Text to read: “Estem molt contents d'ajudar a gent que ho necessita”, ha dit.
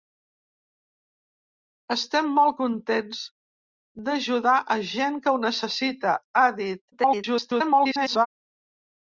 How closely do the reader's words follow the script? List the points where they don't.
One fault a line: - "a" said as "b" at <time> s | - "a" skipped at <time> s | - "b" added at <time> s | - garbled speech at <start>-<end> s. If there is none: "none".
- garbled speech at 6.9-8.3 s